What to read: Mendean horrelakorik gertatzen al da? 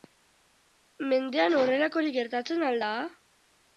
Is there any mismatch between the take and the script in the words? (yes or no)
no